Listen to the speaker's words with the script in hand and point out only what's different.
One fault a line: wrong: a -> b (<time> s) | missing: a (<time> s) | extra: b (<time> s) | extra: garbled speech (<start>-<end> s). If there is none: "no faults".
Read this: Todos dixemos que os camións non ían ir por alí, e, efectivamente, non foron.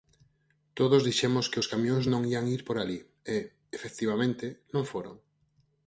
no faults